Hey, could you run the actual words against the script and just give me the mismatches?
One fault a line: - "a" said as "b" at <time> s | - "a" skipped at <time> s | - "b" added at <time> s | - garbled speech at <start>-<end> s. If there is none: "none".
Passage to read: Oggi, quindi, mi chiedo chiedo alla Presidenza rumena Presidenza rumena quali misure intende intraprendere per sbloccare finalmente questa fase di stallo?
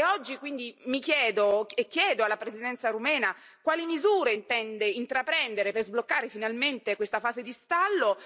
- "e" added at 1.7 s
- "Presidenza rumena" skipped at 3.4 s